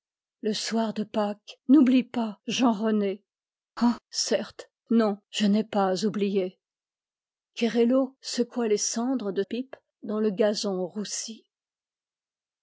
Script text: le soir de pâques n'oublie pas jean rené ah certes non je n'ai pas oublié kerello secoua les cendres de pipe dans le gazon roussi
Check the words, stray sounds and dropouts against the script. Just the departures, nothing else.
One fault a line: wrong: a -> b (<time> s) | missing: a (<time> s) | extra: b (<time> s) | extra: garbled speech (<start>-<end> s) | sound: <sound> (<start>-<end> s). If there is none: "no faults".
no faults